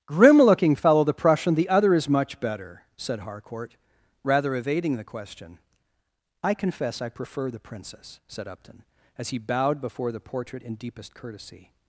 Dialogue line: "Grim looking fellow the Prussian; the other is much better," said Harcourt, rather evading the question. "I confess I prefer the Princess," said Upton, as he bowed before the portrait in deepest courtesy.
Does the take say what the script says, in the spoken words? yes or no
yes